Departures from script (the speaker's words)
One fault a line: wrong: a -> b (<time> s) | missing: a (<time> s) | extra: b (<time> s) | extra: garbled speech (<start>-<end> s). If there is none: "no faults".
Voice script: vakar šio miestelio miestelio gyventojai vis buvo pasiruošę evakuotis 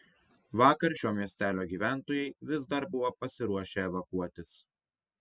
missing: miestelio (1.6 s)
extra: dar (2.7 s)